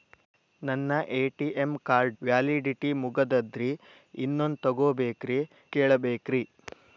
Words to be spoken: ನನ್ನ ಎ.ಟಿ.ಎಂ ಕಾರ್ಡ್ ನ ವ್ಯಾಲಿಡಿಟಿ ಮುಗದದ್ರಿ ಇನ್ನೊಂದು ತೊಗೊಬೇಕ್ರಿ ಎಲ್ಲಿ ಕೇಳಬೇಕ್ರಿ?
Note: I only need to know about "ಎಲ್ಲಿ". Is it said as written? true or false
false